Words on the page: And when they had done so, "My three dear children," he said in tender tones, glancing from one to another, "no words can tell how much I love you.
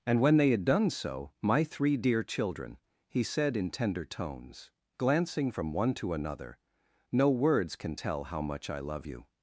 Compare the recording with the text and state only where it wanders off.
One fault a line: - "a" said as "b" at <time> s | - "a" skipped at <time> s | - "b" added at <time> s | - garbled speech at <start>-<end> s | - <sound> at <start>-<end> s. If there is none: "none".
none